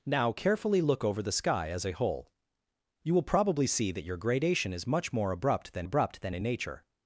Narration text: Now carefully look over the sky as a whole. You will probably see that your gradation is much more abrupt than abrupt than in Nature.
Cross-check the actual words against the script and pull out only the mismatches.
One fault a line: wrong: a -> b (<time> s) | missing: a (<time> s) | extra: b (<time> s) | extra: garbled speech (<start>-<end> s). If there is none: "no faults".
no faults